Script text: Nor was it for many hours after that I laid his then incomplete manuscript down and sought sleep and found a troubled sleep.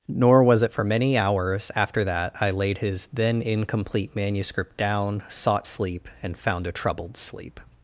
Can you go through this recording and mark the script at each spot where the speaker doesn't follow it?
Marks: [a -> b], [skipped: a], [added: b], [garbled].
Nor was it for many hours after that I laid his then incomplete manuscript down [skipped: and] sought sleep and found a troubled sleep.